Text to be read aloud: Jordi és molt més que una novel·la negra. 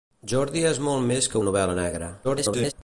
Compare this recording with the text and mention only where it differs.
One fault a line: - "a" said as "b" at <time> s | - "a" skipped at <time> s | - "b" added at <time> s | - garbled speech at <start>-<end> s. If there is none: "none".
- "una" skipped at 1.4 s
- garbled speech at 2.2-2.7 s